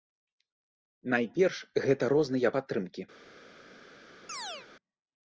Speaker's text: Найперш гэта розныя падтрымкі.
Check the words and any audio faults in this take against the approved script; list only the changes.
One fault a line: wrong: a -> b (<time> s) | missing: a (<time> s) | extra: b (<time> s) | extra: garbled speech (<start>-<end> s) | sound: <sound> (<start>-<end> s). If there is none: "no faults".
sound: chirp (4.3-4.7 s)